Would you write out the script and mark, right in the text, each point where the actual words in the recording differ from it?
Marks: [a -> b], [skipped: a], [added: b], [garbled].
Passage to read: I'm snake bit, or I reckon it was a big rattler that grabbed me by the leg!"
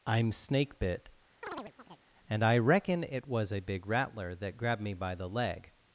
I'm snake bit, [or -> and] I reckon it was a big rattler that grabbed me by the leg!"